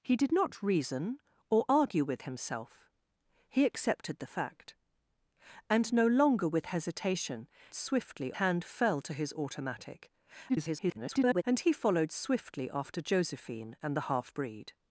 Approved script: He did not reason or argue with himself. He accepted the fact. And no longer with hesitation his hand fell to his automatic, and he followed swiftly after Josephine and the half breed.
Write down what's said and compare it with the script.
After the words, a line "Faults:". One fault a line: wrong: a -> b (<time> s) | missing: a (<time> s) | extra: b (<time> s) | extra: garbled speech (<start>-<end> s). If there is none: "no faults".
He did not reason or argue with himself. He accepted the fact. And no longer with hesitation swiftly hand fell to his automatic, [garbled] and he followed swiftly after Josephine and the half breed.
Faults:
wrong: his -> swiftly (7.7 s)
extra: garbled speech (10.5-11.4 s)